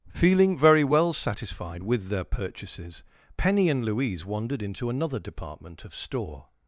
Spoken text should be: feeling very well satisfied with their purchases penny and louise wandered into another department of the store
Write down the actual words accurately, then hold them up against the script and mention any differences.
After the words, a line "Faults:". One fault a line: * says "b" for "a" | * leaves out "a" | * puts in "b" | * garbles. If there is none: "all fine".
feeling very well satisfied with their purchases penny and louise wandered into another department of store
Faults:
* leaves out "the"